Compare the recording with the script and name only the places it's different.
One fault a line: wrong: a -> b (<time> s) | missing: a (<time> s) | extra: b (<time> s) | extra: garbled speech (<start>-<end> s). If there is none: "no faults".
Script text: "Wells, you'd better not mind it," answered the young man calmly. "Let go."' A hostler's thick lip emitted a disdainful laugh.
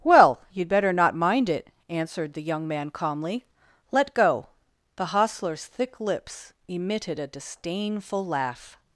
wrong: Wells -> Well (0.0 s)
wrong: A -> The (5.0 s)
wrong: lip -> lips (6.0 s)